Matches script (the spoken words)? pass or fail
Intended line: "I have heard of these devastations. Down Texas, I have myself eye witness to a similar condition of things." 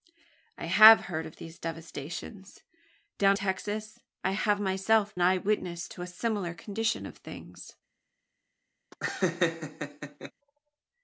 pass